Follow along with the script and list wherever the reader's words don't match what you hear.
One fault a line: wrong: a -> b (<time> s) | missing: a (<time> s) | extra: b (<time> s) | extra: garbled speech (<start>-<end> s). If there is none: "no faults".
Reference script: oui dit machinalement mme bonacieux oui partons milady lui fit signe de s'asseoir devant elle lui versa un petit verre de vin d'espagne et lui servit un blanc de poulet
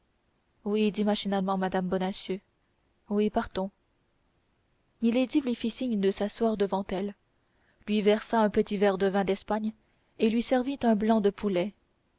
no faults